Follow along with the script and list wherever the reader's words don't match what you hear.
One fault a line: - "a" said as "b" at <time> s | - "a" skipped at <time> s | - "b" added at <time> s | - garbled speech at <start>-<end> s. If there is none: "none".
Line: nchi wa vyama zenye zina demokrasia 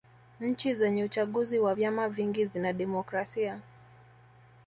- "zenye uchaguzi" added at 0.8 s
- "zenye" said as "vingi" at 2.1 s